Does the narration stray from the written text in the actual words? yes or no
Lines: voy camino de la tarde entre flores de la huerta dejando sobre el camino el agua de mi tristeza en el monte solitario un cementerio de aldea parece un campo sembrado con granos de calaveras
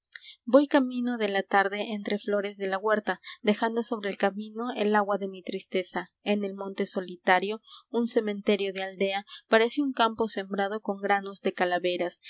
no